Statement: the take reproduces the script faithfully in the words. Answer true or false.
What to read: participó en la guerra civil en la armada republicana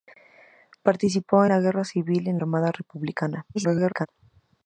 false